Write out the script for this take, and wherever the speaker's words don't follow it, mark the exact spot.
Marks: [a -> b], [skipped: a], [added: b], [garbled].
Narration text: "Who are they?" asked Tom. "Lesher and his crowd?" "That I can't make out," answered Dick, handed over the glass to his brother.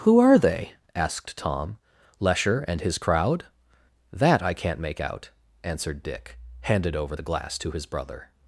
"Who are they?" asked Tom. "Lesher and his crowd?" "That I can't make out," answered Dick, handed over the glass to his brother.